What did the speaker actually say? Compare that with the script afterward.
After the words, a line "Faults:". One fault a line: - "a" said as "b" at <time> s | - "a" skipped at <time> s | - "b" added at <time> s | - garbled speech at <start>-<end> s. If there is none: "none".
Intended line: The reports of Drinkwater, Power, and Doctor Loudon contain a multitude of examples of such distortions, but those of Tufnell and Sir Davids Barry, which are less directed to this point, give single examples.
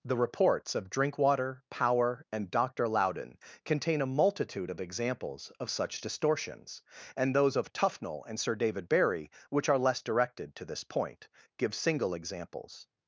The reports of Drinkwater, Power, and Doctor Loudon contain a multitude of examples of such distortions, and those of Tufnell and Sir David Barry, which are less directed to this point, give single examples.
Faults:
- "but" said as "and" at 7.2 s
- "Davids" said as "David" at 8.5 s